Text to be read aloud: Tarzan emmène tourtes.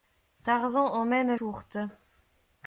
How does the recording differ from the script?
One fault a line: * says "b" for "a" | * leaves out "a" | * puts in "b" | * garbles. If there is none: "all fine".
all fine